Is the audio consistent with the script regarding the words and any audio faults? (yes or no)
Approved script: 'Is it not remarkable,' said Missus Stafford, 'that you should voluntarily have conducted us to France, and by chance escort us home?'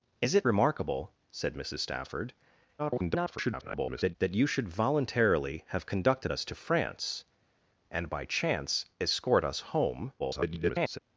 no